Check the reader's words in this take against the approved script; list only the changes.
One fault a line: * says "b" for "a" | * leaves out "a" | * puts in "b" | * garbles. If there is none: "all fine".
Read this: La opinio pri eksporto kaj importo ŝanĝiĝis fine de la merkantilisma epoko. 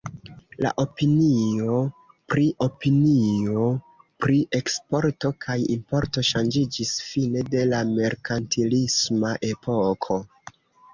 * puts in "opinio pri"